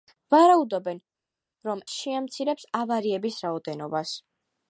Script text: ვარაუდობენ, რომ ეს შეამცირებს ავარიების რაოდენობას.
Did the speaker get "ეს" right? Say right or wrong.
wrong